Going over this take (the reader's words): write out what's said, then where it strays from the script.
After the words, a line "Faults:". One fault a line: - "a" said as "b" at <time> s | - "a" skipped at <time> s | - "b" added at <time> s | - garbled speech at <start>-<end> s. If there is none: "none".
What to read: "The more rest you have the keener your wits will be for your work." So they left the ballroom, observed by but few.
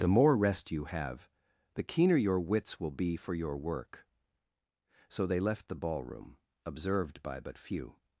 "The more rest you have the keener your wits will be for your work." So they left the ballroom, observed by but few.
Faults:
none